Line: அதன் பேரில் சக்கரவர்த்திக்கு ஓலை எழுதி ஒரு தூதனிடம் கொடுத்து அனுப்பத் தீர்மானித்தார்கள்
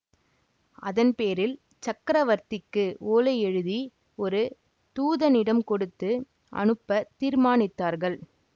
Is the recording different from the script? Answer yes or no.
no